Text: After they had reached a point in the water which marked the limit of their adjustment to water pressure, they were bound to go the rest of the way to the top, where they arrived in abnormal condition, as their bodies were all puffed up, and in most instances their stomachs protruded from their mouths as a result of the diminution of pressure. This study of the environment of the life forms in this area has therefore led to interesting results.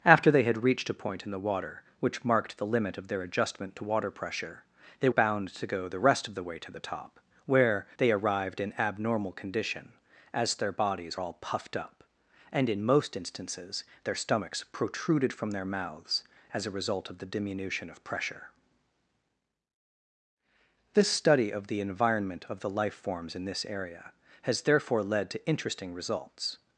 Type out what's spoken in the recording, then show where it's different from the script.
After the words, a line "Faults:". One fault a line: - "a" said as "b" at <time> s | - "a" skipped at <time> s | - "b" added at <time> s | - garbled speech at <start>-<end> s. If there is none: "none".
After they had reached a point in the water which marked the limit of their adjustment to water pressure, they bound to go the rest of the way to the top, where they arrived in abnormal condition, as their bodies all puffed up, and in most instances their stomachs protruded from their mouths as a result of the diminution of pressure. This study of the environment of the life forms in this area has therefore led to interesting results.
Faults:
- "were" skipped at 5.1 s
- "were" skipped at 11.2 s